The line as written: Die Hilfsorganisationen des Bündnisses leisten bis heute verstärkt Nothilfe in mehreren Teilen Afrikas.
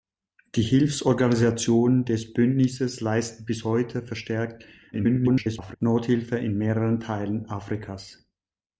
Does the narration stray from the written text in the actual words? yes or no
yes